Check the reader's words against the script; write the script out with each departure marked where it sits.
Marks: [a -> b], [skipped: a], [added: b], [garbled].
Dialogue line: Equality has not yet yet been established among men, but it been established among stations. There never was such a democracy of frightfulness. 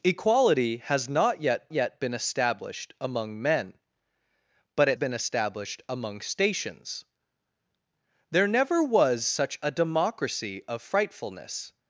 Equality has not yet yet been established among men, but it been established among stations. There never was such a democracy of frightfulness.